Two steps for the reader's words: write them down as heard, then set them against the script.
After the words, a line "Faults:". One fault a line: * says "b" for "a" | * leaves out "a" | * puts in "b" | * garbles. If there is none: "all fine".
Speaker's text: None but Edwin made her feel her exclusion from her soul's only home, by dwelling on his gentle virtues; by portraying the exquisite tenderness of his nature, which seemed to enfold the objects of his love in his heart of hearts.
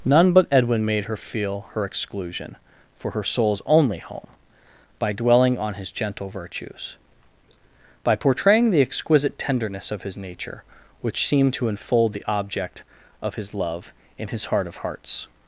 None but Edwin made her feel her exclusion for her soul's only home, by dwelling on his gentle virtues; by portraying the exquisite tenderness of his nature, which seemed to enfold the object of his love in his heart of hearts.
Faults:
* says "for" for "from"
* says "object" for "objects"